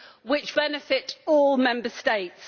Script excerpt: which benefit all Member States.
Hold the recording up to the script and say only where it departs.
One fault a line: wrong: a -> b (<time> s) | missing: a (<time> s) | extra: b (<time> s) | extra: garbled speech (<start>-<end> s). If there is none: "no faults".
no faults